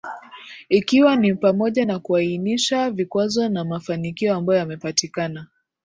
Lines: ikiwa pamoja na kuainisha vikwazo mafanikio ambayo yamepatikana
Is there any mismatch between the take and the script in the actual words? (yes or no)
yes